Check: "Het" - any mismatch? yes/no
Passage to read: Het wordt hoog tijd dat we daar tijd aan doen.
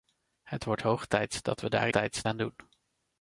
no